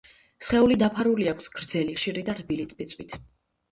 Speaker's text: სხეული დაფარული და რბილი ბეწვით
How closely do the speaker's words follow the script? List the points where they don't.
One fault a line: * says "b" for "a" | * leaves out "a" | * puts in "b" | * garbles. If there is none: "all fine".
* puts in "აქვს გრძელი ხშირი"